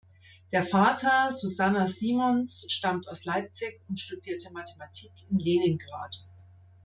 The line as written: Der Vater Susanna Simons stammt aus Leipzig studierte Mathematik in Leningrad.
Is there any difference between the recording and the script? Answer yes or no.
yes